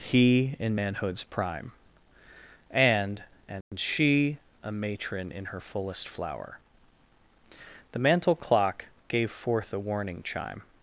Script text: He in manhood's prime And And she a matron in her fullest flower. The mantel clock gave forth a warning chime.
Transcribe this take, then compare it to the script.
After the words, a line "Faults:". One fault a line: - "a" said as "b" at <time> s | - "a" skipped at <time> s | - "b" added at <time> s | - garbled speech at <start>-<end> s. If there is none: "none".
He in manhood's prime And And she a matron in her fullest flower. The mantel clock gave forth a warning chime.
Faults:
none